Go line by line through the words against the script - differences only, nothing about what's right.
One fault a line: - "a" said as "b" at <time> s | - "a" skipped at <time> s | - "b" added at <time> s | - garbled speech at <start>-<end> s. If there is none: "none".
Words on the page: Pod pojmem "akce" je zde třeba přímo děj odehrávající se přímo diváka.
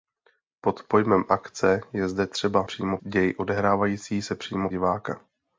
none